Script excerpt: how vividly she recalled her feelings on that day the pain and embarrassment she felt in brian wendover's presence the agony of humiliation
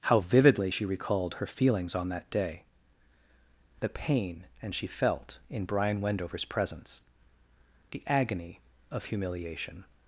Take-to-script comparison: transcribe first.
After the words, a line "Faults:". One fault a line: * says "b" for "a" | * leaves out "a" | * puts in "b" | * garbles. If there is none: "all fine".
how vividly she recalled her feelings on that day the pain and she felt in brian wendover's presence the agony of humiliation
Faults:
* leaves out "embarrassment"